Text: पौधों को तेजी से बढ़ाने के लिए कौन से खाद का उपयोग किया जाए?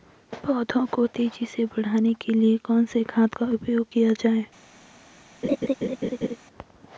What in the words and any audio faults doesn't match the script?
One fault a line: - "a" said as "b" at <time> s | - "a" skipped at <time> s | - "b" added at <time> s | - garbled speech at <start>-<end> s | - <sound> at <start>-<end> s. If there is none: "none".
- laugh at 5.4-6.4 s